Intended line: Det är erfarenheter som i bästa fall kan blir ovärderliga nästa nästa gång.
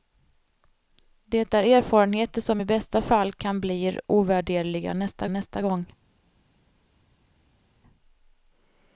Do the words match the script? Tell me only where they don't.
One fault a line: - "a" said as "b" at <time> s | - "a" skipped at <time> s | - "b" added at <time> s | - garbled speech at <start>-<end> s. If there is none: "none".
none